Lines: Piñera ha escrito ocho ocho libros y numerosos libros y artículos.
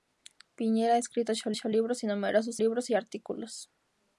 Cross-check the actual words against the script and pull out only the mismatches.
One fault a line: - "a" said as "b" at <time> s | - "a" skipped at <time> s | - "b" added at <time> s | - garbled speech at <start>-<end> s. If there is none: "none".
none